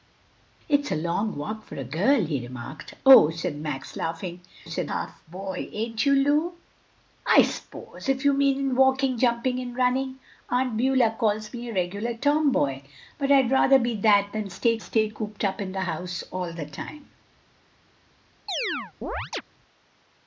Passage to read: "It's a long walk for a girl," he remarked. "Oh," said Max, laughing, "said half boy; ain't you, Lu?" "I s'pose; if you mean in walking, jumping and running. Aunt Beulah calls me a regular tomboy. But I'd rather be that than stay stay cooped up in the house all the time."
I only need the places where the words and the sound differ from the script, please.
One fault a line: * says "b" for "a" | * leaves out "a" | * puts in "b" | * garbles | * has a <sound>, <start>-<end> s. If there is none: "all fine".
* has a chirp, 18.5-19.4 s